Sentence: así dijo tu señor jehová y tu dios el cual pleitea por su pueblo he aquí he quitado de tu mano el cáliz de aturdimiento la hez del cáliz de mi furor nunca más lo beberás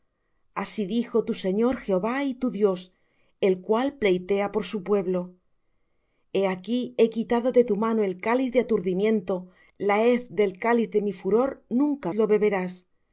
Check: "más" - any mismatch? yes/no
yes